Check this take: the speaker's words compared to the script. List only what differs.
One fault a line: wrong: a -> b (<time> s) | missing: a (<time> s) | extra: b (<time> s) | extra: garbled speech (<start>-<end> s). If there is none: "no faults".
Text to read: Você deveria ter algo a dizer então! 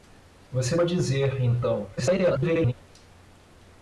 missing: deveria ter algo (0.8 s)
extra: garbled speech (2.0-2.7 s)